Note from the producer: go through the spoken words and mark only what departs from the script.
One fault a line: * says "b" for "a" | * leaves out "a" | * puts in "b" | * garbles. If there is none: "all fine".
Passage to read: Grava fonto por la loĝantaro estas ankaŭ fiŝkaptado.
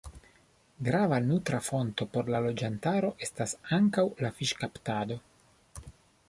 * puts in "nutra"
* puts in "la"